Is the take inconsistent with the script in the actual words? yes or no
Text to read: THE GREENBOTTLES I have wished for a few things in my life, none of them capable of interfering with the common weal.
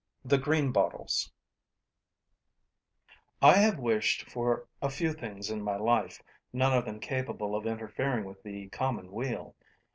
no